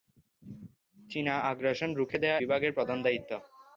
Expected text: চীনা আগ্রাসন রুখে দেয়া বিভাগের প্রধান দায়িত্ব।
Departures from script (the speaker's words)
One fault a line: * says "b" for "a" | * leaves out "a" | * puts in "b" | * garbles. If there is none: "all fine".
all fine